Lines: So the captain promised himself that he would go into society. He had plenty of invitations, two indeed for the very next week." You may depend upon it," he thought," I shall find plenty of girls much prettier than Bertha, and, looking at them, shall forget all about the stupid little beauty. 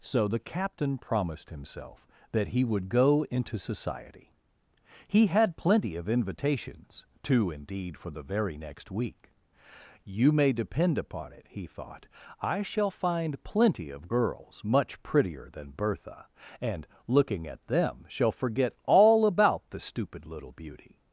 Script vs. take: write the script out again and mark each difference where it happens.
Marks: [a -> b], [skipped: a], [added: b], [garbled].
So the captain promised himself that he would go into society. He had plenty of invitations, two indeed for the very next week." You may depend upon it," he thought," I shall find plenty of girls much prettier than Bertha, and, looking at them, shall forget all about the stupid little beauty.